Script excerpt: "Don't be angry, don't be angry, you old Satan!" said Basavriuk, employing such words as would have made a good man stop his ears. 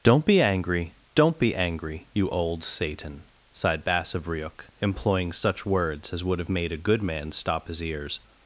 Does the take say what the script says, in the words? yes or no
no